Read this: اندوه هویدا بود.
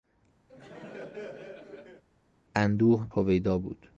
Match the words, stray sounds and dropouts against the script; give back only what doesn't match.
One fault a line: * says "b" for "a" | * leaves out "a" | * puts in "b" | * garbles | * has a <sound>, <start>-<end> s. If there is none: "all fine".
* has a laugh, 0.5-2.0 s